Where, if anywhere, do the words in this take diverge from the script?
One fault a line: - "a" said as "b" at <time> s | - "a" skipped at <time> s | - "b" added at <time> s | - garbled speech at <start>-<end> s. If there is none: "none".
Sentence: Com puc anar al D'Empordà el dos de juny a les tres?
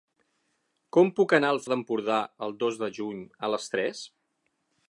none